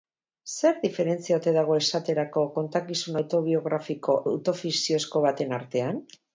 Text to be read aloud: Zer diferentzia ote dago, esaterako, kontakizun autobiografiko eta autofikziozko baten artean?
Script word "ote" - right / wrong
right